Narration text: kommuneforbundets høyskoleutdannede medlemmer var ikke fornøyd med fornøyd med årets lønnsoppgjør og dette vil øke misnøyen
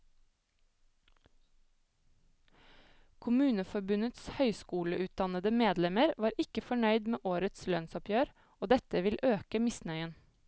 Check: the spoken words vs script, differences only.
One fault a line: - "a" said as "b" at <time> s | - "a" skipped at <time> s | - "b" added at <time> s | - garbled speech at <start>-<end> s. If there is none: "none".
- "fornøyd med" skipped at 7.3 s